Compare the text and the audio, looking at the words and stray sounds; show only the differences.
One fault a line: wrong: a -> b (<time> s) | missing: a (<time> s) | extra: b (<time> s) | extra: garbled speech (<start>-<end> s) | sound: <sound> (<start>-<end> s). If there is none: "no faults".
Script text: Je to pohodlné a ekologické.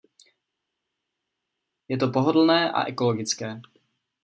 no faults